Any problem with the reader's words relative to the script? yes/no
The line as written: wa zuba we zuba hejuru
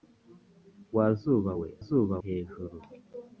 no